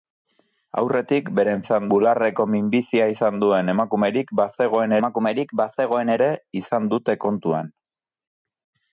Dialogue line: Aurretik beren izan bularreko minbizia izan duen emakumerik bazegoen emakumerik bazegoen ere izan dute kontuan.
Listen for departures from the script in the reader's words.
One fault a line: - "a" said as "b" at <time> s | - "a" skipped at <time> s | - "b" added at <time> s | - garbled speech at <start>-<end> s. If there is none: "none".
none